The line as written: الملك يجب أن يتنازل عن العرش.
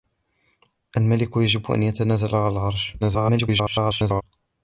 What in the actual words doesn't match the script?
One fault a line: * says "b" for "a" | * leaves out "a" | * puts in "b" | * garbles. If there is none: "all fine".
* garbles